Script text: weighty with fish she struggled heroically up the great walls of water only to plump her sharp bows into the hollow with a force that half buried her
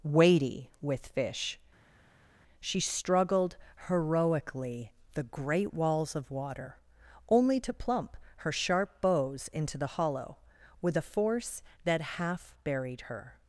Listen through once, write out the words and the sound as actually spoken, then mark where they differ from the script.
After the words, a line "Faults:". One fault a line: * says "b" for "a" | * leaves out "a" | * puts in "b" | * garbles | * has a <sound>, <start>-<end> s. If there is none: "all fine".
weighty with fish she struggled heroically the great walls of water only to plump her sharp bows into the hollow with a force that half buried her
Faults:
* leaves out "up"